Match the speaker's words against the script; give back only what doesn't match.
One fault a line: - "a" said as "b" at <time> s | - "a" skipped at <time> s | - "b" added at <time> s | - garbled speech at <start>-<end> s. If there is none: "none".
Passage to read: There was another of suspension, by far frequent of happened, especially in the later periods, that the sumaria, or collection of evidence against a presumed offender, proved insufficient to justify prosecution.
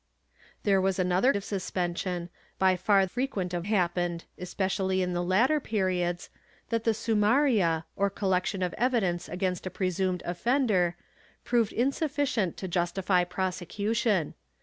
none